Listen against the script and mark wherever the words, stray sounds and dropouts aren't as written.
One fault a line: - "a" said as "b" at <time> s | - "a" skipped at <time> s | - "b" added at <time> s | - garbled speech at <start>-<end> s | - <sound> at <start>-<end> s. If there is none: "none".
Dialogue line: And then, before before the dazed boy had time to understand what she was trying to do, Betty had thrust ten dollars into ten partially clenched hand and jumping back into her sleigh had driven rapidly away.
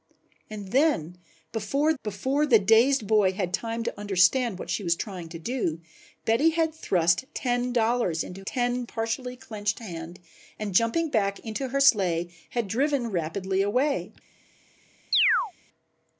- chirp at 15.1-15.5 s